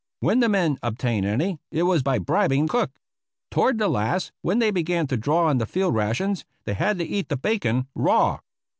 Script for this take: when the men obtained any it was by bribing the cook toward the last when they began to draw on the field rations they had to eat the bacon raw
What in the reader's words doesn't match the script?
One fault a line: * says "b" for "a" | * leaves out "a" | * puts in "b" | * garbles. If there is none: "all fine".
* leaves out "the"